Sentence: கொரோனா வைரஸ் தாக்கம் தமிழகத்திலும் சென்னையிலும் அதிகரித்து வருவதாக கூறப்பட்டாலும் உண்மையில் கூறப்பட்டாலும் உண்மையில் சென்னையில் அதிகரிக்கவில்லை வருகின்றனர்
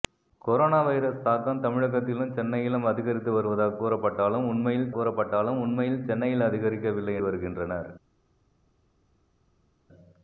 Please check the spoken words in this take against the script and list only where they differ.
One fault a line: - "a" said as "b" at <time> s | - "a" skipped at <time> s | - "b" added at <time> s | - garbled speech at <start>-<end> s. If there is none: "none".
none